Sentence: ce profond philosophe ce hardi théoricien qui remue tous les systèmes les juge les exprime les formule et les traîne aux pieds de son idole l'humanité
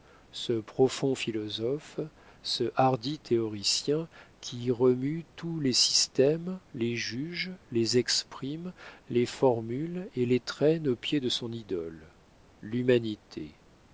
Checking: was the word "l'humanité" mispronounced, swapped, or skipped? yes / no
no